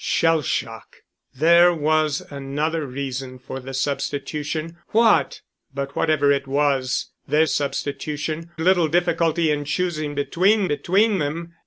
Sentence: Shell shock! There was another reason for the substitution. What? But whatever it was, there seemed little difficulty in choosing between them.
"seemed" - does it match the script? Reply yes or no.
no